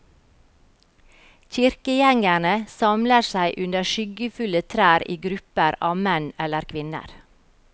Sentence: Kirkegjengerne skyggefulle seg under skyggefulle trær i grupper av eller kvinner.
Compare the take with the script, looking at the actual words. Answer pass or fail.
fail